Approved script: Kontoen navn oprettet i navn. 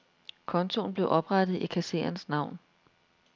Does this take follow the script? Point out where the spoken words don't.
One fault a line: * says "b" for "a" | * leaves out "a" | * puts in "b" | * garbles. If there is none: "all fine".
* says "blev" for "navn"
* puts in "kassererens"